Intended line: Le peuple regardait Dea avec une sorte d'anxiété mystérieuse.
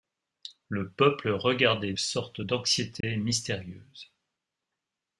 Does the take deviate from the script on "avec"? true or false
true